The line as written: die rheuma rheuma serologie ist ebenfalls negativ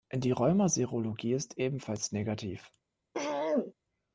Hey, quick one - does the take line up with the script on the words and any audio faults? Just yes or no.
no